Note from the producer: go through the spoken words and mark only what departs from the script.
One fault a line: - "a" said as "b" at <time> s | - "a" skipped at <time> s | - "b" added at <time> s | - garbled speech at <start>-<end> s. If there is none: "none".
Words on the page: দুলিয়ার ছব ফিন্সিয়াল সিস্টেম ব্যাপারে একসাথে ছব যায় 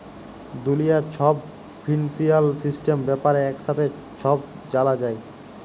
- "জালা" added at 4.7 s